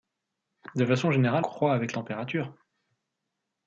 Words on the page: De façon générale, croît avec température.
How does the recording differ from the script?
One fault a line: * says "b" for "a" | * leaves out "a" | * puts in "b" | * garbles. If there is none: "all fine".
all fine